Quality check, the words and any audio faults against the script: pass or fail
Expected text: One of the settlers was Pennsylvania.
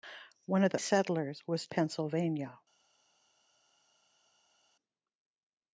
pass